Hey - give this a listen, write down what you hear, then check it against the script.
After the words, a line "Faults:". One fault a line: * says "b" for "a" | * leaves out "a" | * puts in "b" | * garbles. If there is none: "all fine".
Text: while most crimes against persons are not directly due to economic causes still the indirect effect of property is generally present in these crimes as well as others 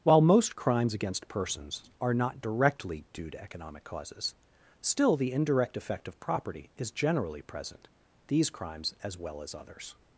while most crimes against persons are not directly due to economic causes still the indirect effect of property is generally present these crimes as well as others
Faults:
* leaves out "in"